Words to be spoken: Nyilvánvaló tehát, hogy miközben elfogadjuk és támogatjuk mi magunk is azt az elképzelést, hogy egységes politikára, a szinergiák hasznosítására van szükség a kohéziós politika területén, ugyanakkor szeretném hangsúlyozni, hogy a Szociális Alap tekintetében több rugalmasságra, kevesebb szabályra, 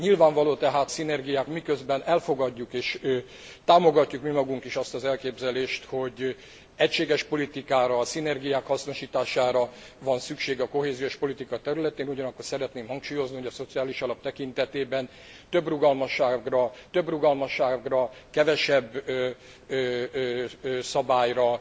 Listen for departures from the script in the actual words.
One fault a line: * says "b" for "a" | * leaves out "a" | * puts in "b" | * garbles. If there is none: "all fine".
* says "szinergiák" for "hogy"
* puts in "több rugalmasságra"